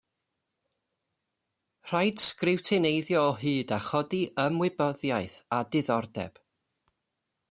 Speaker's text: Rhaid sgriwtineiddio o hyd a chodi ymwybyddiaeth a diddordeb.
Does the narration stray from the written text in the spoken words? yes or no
no